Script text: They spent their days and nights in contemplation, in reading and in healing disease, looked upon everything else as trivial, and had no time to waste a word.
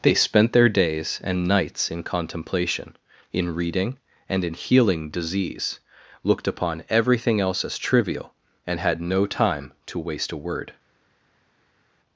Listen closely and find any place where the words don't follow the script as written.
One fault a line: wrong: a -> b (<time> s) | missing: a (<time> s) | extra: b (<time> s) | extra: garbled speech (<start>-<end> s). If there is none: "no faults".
no faults